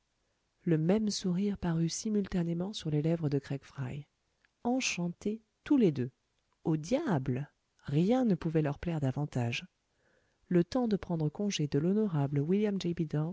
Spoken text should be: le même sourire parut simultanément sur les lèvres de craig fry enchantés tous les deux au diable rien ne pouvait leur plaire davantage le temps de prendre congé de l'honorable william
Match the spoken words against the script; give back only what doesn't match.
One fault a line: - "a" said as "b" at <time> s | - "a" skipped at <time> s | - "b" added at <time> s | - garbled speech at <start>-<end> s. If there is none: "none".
none